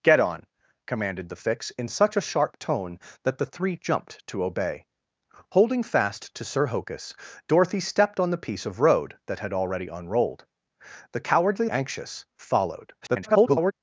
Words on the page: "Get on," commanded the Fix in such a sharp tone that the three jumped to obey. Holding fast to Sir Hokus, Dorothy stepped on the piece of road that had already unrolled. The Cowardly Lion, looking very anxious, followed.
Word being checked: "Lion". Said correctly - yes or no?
no